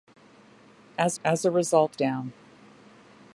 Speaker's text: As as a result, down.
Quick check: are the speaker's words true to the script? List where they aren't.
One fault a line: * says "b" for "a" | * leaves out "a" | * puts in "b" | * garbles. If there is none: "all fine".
all fine